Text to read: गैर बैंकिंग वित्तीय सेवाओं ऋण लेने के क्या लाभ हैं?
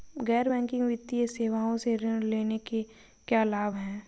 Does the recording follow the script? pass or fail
fail